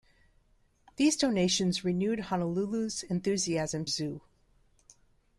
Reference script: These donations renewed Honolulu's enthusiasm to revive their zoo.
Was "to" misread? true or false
true